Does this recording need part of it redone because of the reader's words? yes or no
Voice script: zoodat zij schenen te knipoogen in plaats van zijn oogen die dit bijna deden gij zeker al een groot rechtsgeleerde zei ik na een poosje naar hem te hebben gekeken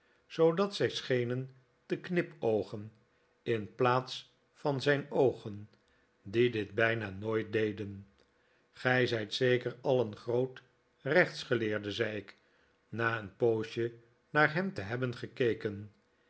yes